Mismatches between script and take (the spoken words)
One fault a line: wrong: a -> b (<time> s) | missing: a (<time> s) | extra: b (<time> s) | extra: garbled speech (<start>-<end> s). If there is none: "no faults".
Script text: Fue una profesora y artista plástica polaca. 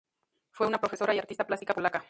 no faults